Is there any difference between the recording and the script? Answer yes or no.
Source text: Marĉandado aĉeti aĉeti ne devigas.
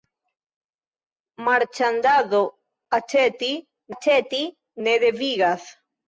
no